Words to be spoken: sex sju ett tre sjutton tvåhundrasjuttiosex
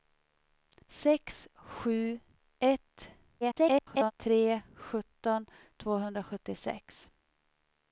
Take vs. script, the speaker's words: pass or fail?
fail